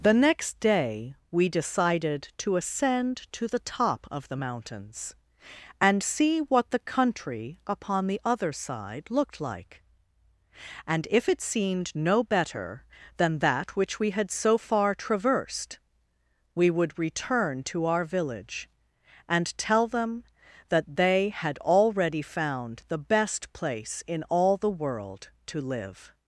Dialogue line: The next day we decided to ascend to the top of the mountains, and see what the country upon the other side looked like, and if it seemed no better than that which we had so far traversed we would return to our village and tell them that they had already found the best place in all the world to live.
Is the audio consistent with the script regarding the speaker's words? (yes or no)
yes